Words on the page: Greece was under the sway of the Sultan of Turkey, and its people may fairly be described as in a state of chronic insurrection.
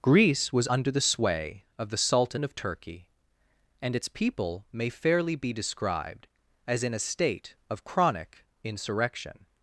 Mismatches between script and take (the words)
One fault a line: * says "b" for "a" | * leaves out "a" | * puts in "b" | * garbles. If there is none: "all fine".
all fine